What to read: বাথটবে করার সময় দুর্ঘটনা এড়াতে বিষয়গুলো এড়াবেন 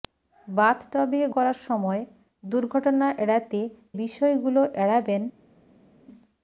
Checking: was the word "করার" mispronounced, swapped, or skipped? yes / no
no